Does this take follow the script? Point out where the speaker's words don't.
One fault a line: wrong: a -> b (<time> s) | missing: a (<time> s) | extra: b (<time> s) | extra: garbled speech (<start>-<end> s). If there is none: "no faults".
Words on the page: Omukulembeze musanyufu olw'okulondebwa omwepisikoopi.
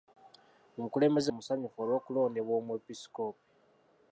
no faults